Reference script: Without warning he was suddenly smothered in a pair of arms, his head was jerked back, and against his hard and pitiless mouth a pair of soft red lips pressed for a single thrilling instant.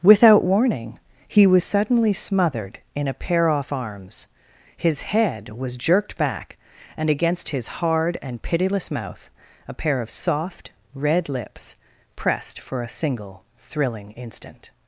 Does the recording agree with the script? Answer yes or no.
no